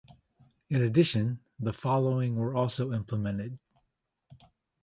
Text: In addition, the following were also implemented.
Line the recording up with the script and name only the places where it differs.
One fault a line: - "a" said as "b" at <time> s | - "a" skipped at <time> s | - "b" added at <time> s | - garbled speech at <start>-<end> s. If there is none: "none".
none